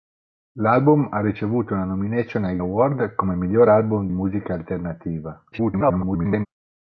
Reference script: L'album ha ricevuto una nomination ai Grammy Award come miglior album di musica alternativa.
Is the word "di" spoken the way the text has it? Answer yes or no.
no